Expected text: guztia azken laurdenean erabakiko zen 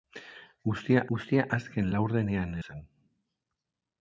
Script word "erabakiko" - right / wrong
wrong